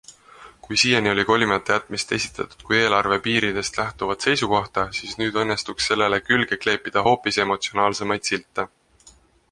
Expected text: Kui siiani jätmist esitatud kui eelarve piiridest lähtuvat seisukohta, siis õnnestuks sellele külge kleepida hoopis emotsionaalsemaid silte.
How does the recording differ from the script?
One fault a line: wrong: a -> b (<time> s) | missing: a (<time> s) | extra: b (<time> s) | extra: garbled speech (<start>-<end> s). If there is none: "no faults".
extra: oli kolimata (1.1 s)
extra: nüüd (5.2 s)